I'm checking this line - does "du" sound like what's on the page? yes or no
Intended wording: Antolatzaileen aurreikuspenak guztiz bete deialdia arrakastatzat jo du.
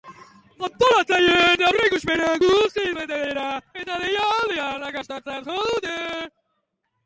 no